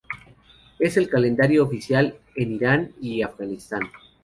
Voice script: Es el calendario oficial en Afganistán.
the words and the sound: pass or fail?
fail